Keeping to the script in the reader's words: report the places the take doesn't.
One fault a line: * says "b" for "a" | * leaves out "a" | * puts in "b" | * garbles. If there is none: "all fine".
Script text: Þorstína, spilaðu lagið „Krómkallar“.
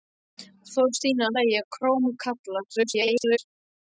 * leaves out "spilaðu"
* garbles